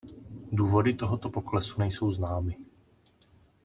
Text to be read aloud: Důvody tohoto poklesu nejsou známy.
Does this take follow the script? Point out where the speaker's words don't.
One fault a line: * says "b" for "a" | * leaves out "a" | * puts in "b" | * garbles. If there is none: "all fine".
all fine